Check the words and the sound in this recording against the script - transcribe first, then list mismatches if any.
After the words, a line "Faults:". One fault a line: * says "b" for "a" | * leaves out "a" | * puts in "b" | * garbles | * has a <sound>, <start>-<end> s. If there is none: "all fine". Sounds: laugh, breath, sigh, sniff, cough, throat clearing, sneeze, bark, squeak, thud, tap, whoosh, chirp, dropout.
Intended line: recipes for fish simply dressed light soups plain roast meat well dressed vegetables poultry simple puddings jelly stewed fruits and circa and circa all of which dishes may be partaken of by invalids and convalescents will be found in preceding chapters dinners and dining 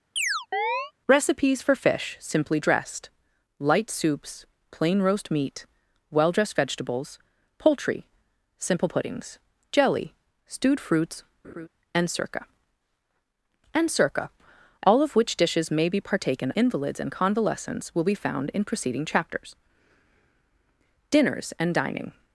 recipes for fish simply dressed light soups plain roast meat well dressed vegetables poultry simple puddings jelly stewed fruits and circa and circa all of which dishes may be partaken invalids and convalescents will be found in preceding chapters dinners and dining
Faults:
* has a chirp, 0.2-0.9 s
* has a laugh, 11.4-11.7 s
* leaves out "of by"